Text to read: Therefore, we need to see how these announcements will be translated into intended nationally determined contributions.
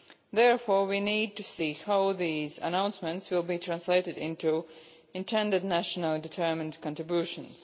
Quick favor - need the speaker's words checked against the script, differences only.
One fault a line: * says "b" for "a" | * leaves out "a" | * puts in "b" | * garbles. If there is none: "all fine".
all fine